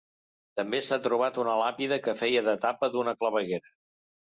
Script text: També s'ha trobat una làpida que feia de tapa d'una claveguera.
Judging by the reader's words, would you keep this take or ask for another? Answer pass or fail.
pass